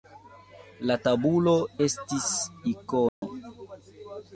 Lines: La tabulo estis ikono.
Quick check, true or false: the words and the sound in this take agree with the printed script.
false